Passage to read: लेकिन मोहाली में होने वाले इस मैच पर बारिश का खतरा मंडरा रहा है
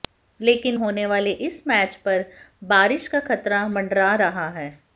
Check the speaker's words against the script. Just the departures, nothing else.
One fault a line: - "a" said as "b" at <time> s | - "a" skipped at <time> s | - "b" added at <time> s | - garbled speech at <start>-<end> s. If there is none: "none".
- "मोहाली में" skipped at 0.8 s